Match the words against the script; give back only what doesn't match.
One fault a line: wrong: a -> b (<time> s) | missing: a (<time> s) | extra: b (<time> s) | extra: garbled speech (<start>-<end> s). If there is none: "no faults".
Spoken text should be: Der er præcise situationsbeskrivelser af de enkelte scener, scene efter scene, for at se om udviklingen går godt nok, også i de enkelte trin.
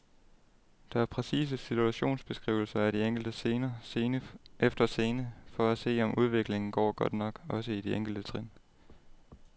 no faults